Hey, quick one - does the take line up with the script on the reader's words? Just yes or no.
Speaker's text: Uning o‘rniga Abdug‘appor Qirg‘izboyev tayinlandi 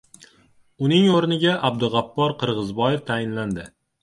yes